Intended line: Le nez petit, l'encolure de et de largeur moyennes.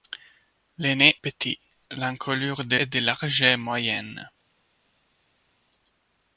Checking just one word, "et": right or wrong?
right